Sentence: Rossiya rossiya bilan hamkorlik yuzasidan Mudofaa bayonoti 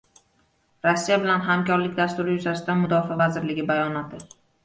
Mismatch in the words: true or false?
true